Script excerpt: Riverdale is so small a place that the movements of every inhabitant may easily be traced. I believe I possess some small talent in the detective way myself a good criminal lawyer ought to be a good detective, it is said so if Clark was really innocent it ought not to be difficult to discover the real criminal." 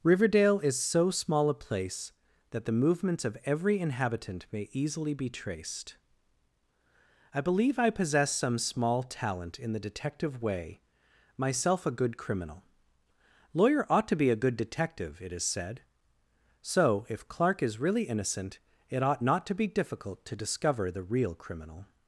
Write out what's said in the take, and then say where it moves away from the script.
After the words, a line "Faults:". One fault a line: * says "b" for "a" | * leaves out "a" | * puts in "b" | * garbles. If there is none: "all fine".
Riverdale is so small a place that the movements of every inhabitant may easily be traced. I believe I possess some small talent in the detective way myself a good criminal lawyer ought to be a good detective, it is said so if Clark is really innocent it ought not to be difficult to discover the real criminal."
Faults:
* says "is" for "was"